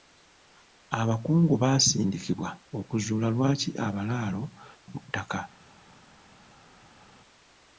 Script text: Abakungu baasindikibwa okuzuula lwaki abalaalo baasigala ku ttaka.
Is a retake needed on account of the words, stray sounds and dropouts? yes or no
yes